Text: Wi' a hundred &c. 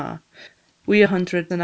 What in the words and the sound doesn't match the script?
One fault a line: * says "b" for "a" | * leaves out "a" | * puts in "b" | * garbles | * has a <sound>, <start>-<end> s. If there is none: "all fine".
all fine